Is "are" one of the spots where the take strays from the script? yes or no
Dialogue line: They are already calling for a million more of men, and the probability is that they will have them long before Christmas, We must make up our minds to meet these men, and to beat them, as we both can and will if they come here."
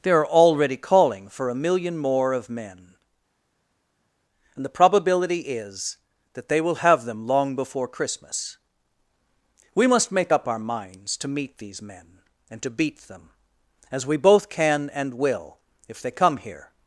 no